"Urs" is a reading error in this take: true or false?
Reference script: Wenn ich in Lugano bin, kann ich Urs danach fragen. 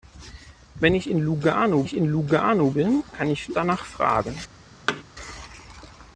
true